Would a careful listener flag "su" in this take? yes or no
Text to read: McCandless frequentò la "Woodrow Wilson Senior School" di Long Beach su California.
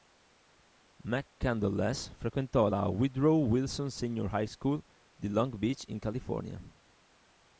yes